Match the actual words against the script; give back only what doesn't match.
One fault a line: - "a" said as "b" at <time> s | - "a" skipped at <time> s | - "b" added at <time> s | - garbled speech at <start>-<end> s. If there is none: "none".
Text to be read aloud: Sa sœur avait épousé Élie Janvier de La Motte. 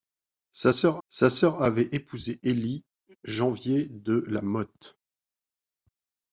- "sa sœur" added at 1.1 s